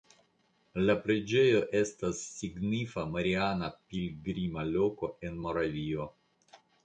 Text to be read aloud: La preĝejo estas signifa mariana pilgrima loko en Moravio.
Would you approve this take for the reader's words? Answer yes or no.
yes